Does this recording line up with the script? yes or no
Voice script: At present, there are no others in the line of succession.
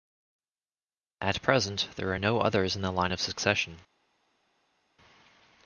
yes